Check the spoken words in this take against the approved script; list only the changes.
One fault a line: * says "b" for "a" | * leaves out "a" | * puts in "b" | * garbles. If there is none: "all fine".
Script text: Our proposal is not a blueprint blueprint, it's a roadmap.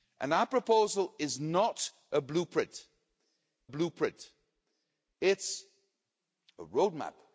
all fine